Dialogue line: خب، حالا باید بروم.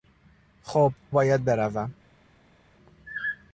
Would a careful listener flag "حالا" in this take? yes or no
yes